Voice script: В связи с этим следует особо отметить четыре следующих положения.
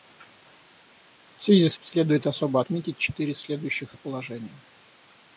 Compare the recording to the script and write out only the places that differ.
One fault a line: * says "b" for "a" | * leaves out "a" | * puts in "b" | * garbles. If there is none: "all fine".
* leaves out "этим"